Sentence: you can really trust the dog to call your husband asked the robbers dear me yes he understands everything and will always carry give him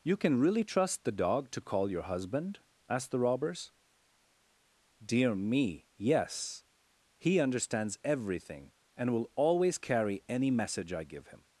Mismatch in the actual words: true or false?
true